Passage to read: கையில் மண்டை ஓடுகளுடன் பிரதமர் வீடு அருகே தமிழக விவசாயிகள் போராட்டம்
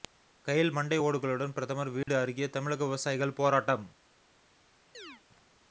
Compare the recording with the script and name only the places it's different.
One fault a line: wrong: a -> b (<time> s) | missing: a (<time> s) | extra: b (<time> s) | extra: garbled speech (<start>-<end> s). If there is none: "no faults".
no faults